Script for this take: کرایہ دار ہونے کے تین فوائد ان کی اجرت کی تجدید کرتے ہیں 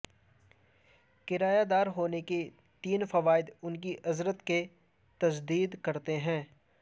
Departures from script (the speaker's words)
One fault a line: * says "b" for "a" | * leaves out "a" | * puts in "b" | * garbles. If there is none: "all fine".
all fine